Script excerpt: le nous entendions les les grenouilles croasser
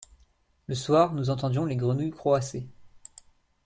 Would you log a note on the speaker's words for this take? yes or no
yes